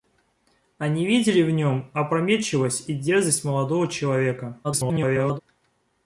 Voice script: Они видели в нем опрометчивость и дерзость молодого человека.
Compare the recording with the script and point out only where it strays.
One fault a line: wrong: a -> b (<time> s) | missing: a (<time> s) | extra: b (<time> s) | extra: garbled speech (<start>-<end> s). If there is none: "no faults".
extra: garbled speech (4.6-5.4 s)